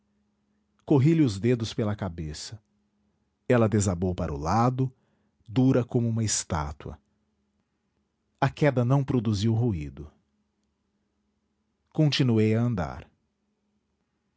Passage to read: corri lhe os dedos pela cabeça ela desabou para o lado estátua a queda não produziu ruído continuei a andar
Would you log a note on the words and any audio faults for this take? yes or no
yes